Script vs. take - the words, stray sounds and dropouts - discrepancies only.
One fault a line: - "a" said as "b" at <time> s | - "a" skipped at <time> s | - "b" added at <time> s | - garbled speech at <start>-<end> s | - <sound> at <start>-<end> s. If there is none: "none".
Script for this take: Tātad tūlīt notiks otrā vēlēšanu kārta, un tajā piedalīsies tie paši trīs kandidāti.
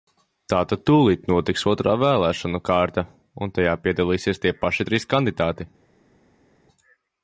none